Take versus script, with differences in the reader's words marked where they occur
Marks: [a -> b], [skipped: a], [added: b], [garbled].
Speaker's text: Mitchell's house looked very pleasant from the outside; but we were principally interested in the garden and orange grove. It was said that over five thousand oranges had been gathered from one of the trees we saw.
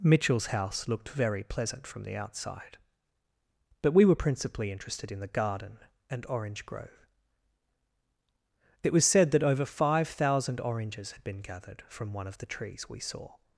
Mitchell's house looked very pleasant from the outside; but we were principally interested in the garden and orange grove. It was said that over five thousand oranges had been gathered from one of the trees we saw.